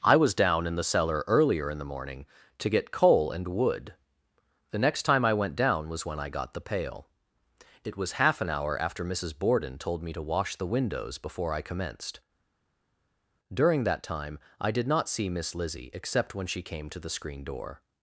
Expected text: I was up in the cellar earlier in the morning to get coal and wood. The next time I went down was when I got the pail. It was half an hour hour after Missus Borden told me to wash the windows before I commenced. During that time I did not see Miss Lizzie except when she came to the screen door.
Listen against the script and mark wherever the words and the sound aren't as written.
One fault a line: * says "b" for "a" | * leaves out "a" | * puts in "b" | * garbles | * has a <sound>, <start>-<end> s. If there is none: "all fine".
* says "down" for "up"
* leaves out "hour"